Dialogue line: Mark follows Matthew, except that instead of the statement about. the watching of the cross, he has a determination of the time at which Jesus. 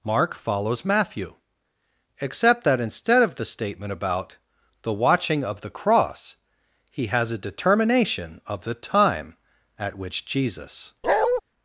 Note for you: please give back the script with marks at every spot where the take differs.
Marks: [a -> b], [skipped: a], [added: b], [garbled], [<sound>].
Mark follows Matthew, except that instead of the statement about. the watching of the cross, he has a determination of the time at which Jesus. [bark]